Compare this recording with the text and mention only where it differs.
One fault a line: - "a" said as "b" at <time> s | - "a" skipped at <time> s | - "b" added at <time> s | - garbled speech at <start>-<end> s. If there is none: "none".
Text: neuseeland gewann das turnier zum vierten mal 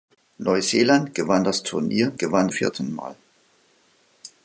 - "zum" said as "gewann" at 2.2 s